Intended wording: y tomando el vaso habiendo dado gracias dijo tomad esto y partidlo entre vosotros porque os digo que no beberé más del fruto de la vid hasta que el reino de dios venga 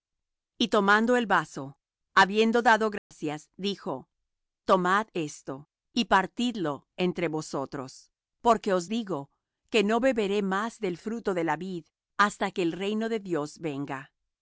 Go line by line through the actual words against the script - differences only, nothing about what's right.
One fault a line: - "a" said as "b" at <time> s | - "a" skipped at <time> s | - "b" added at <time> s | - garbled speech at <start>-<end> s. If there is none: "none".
none